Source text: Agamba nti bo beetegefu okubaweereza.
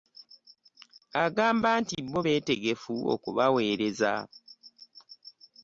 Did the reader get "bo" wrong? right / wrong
right